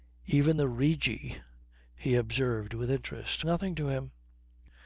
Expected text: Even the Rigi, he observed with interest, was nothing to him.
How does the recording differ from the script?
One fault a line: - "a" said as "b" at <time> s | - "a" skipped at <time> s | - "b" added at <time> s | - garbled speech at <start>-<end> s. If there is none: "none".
- "was" skipped at 3.4 s